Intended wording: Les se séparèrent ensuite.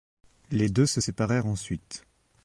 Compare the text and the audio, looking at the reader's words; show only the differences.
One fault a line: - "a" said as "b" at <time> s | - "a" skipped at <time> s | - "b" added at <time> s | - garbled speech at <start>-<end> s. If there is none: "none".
- "deux" added at 0.7 s